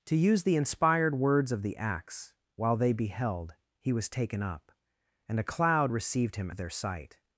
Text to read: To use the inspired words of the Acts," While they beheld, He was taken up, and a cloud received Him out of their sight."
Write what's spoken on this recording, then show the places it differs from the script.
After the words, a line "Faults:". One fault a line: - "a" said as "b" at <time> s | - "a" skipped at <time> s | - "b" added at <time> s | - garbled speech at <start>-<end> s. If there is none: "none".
To use the inspired words of the Acts," While they beheld, He was taken up, and a cloud received Him of their sight."
Faults:
- "out" skipped at 6.5 s